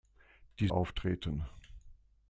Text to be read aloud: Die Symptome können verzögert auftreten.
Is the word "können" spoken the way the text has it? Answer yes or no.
no